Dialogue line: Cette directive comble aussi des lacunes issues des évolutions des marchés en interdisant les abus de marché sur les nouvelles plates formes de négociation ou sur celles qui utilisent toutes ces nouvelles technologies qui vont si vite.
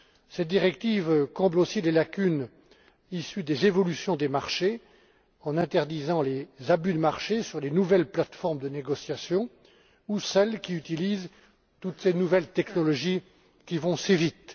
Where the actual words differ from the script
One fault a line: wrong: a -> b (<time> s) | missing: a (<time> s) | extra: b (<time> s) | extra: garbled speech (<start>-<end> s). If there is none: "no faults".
missing: sur (10.2 s)